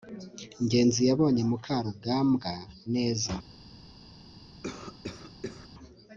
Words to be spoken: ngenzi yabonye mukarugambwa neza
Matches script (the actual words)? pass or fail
pass